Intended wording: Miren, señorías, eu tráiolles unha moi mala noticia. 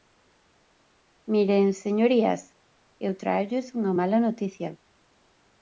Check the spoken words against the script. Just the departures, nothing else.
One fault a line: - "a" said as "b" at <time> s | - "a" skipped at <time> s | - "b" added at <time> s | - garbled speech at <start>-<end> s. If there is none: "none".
- "moi" skipped at 3.9 s